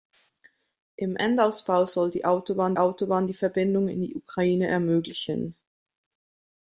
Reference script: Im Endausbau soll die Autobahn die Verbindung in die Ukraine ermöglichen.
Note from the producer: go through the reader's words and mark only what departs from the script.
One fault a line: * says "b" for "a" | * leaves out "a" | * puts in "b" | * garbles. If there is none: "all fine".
* puts in "Autobahn"